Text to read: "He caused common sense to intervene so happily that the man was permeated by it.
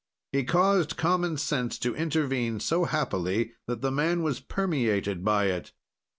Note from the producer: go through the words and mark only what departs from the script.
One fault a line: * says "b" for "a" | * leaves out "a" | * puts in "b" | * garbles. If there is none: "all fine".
all fine